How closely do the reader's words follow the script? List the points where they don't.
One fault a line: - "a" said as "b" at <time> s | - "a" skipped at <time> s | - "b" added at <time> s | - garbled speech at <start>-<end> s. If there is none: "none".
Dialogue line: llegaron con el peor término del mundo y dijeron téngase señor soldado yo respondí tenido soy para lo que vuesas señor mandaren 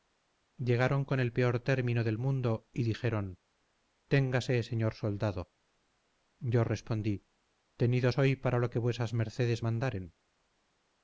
- "señor" said as "mercedes" at 9.1 s